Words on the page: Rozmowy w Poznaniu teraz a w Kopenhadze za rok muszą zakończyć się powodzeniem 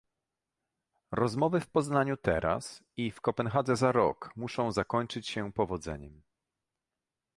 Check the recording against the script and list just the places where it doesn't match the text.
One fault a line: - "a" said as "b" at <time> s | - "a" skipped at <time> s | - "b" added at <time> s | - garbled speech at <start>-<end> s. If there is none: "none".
- "a" said as "i" at 3.0 s